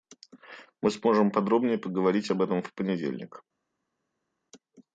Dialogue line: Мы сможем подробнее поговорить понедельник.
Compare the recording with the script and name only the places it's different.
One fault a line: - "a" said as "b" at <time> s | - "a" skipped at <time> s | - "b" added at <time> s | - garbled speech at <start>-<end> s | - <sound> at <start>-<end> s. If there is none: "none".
- "об этом в" added at 2.3 s